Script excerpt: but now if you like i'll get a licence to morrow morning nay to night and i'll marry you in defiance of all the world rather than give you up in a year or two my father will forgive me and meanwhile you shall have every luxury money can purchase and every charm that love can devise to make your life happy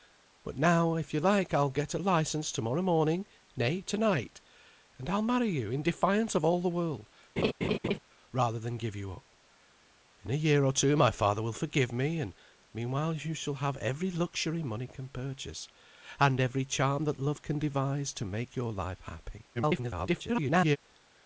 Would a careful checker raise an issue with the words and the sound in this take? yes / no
yes